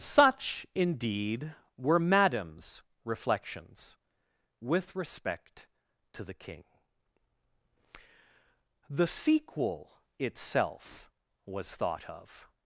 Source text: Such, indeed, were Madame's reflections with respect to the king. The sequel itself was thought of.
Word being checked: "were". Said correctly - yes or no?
yes